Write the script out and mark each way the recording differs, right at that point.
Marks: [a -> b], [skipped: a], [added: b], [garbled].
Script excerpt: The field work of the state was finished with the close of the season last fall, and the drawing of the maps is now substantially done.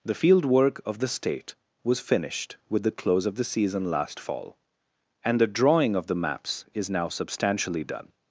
The field work of the state was finished with the close of the season last fall, and the drawing of the maps is now substantially done.